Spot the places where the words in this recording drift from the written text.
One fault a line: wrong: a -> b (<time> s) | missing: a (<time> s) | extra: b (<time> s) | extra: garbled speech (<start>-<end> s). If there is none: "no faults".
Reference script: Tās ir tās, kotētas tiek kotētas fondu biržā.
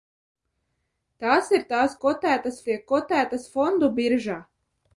no faults